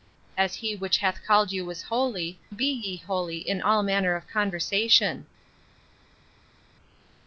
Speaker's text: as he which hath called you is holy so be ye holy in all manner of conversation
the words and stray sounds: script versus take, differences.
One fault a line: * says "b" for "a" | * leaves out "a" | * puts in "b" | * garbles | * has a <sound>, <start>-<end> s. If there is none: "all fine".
* leaves out "so"